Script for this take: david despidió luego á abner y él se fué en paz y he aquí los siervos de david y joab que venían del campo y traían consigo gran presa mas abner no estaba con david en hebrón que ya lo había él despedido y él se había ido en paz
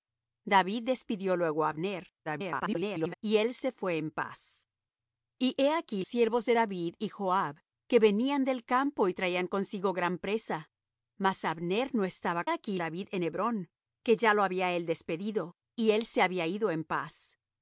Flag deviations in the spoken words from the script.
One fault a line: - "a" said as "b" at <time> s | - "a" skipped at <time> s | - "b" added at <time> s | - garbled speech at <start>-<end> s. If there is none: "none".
- garbled speech at 2.2-3.1 s
- "los" skipped at 6.0 s
- "con" said as "aquí" at 12.5 s